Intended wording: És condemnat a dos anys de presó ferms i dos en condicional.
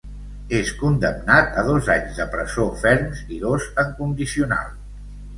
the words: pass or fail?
pass